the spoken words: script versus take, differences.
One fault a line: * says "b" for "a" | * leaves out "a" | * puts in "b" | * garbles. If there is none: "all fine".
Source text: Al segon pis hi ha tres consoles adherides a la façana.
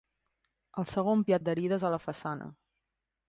* leaves out "pis"
* leaves out "tres consoles"